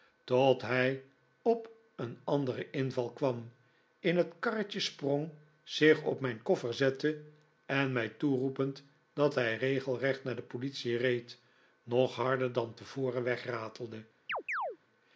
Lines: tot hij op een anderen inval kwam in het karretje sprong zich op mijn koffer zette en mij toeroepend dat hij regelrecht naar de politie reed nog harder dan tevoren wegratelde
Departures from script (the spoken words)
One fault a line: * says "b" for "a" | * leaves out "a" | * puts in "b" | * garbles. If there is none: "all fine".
all fine